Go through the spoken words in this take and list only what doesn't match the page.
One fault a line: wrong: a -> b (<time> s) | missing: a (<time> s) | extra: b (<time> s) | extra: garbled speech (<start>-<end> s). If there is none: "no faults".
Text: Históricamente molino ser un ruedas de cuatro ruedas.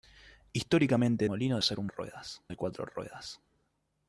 no faults